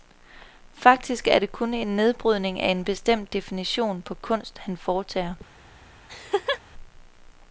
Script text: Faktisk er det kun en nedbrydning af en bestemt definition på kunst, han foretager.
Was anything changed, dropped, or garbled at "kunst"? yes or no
no